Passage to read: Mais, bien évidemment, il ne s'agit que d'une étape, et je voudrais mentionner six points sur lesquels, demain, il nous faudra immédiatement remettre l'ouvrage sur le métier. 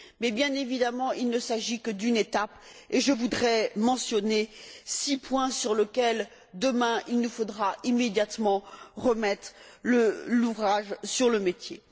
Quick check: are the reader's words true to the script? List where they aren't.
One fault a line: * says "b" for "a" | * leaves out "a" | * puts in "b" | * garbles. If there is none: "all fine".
all fine